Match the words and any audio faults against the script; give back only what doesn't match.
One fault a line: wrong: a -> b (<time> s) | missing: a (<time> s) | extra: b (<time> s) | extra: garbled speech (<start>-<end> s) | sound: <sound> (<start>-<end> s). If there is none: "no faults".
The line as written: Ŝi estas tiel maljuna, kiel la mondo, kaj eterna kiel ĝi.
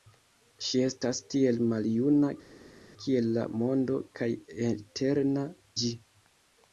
missing: kiel (5.5 s)